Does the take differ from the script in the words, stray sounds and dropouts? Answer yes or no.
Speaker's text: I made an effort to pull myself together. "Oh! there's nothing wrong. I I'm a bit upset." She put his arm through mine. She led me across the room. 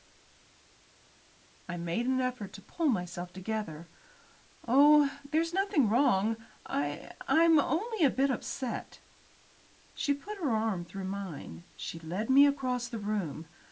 yes